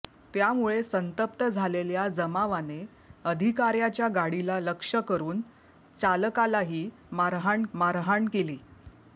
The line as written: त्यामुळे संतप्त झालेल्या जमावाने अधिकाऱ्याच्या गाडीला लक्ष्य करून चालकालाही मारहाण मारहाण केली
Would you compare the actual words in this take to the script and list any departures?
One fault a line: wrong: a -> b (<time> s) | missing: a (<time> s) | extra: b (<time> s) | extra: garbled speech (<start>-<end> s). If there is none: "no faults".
no faults